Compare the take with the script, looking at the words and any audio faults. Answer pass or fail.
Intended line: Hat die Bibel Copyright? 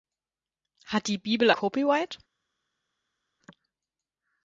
pass